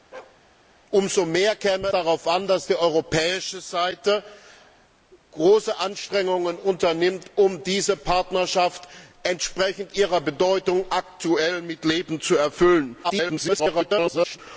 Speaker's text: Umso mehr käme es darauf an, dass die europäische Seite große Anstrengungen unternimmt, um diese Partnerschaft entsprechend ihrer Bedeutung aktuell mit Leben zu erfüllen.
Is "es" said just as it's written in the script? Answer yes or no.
no